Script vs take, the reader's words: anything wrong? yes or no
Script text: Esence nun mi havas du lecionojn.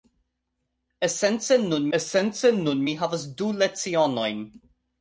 yes